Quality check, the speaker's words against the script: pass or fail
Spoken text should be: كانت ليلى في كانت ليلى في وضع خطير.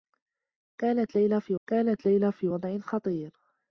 pass